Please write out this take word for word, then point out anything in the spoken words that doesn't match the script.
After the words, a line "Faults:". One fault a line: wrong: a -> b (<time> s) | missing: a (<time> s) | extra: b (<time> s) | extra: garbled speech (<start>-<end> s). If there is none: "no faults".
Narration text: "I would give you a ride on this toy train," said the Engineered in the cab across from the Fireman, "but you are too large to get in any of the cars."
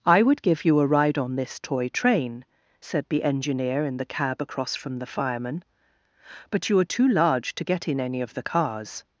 "I would give you a ride on this toy train," said the Engineer in the cab across from the Fireman, "but you are too large to get in any of the cars."
Faults:
wrong: Engineered -> Engineer (3.2 s)